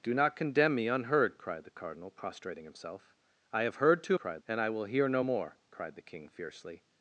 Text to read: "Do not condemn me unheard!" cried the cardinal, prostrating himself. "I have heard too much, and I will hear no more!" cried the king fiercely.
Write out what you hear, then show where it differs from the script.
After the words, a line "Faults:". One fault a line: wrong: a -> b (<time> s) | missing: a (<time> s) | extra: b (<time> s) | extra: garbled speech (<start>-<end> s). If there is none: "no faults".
"Do not condemn me unheard!" cried the cardinal, prostrating himself. "I have heard too cried, and I will hear no more!" cried the king fiercely.
Faults:
wrong: much -> cried (4.1 s)